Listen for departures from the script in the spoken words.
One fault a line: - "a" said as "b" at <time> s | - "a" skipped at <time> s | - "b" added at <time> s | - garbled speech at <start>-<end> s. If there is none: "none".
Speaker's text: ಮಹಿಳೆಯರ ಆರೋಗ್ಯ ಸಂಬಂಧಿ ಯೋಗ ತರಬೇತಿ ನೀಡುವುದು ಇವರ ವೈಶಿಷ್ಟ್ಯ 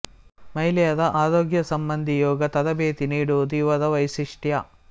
none